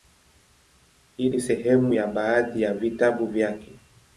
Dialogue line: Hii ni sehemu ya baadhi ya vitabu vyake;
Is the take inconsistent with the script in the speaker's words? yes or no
no